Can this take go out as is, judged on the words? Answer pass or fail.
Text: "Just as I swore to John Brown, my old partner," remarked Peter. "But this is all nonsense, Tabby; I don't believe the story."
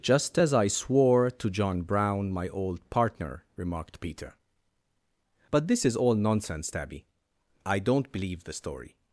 pass